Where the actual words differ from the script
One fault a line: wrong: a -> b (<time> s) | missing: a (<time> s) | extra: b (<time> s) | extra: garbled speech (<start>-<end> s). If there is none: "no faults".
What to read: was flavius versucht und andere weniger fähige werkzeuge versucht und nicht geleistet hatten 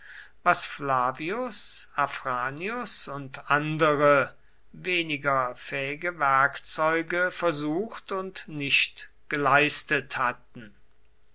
wrong: versucht -> afranius (1.9 s)